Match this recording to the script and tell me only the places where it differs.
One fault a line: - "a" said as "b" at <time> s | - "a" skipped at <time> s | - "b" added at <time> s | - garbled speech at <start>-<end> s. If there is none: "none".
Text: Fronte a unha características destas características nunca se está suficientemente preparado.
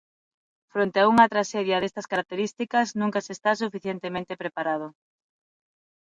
- "características" said as "traxedia" at 1.3 s